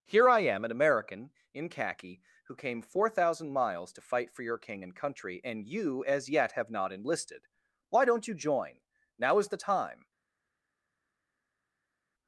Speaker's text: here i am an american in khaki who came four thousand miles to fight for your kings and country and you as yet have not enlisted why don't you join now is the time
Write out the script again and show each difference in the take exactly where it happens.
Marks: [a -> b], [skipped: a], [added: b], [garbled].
here i am an american in khaki who came four thousand miles to fight for your [kings -> king] and country and you as yet have not enlisted why don't you join now is the time